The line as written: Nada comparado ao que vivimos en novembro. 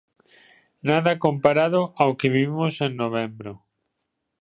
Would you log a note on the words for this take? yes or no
no